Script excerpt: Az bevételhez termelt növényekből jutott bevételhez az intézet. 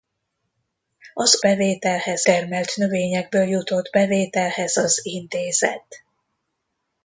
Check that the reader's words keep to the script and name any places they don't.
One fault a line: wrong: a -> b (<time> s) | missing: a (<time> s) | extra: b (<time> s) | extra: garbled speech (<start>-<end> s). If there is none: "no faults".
no faults